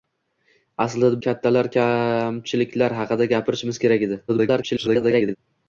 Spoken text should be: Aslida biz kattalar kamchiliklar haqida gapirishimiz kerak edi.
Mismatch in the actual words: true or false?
true